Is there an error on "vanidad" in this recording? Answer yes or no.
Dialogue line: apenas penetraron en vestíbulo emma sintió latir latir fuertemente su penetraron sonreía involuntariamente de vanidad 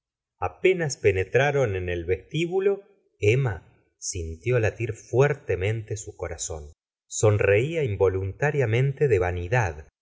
no